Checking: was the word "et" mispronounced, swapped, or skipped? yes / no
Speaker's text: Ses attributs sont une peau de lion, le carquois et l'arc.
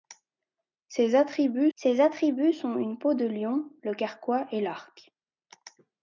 no